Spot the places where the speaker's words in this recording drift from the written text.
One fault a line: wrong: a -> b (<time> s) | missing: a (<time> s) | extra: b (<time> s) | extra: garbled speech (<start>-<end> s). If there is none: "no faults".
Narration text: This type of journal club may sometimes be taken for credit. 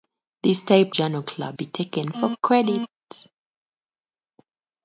missing: of (0.9 s)
missing: may sometimes (1.6 s)